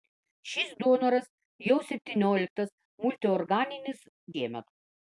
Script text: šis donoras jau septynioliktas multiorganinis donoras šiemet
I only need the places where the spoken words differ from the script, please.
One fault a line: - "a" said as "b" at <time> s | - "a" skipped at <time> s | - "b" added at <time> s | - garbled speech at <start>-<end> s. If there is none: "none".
- "donoras" skipped at 4.0 s